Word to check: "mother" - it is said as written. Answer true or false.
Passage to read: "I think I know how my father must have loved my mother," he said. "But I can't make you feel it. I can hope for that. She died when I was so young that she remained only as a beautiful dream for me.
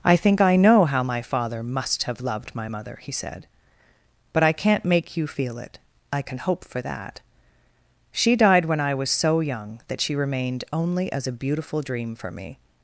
true